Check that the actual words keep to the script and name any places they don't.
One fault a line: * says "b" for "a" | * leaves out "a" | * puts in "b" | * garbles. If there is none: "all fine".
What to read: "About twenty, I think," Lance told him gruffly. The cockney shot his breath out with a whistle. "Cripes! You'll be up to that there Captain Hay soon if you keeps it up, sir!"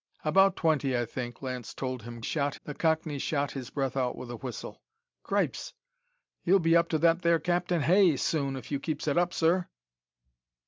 * says "shot" for "gruffly"